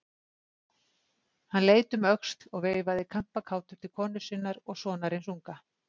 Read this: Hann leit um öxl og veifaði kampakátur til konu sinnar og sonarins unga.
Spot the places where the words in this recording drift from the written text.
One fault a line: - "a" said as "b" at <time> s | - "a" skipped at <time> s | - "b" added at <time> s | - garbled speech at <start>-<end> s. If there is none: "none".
none